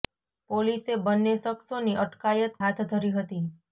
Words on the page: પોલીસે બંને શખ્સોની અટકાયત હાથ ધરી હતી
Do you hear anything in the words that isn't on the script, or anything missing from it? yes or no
no